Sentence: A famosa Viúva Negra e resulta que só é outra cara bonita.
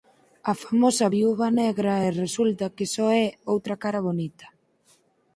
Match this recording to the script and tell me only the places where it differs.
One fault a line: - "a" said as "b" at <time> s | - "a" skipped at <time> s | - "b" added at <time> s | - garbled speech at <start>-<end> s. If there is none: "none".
none